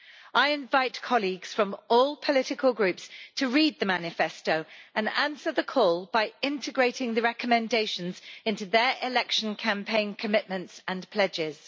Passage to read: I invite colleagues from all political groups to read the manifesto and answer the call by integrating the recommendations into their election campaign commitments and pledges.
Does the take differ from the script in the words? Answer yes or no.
no